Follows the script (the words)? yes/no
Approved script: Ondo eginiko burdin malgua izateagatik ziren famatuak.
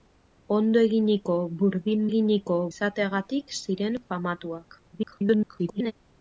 no